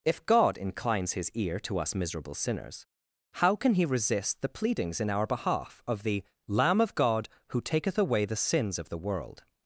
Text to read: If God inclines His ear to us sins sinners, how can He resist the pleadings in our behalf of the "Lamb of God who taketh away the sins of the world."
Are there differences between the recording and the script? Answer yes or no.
yes